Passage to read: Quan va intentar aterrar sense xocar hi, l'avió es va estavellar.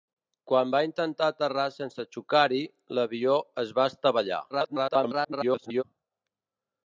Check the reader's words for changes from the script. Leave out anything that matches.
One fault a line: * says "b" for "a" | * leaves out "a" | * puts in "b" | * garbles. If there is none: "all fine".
* garbles